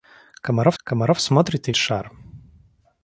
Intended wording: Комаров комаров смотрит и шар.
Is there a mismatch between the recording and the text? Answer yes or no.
no